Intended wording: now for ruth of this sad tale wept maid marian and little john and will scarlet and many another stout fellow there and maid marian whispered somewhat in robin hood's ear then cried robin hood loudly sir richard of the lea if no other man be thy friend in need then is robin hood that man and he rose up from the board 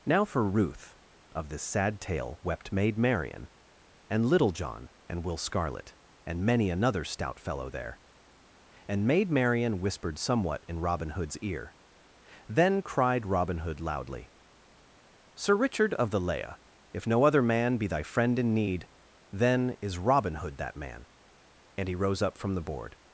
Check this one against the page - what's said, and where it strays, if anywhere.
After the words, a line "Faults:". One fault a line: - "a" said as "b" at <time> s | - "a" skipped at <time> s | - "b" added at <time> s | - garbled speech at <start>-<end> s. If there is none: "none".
now for ruth of this sad tale wept maid marian and little john and will scarlet and many another stout fellow there and maid marian whispered somewhat in robin hood's ear then cried robin hood loudly sir richard of the lea if no other man be thy friend in need then is robin hood that man and he rose up from the board
Faults:
none